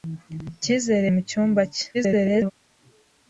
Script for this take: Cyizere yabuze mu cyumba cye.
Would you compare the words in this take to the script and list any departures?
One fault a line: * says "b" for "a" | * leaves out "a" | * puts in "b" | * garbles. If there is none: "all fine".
* leaves out "yabuze"
* garbles